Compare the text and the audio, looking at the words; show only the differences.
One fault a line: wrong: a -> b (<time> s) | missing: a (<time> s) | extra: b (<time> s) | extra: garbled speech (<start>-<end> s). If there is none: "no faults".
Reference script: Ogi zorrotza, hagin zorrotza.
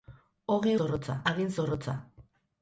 no faults